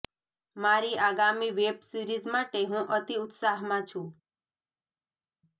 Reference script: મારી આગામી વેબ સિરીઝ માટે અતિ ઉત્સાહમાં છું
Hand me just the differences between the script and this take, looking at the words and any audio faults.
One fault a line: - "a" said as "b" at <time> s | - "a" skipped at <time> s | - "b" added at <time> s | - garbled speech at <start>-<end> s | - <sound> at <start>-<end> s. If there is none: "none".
- "હું" added at 2.7 s